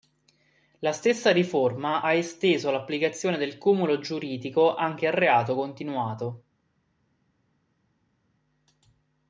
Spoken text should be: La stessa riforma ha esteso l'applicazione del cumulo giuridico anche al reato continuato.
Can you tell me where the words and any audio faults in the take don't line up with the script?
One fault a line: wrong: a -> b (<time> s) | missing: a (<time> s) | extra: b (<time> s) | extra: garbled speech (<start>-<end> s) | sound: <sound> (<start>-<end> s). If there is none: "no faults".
no faults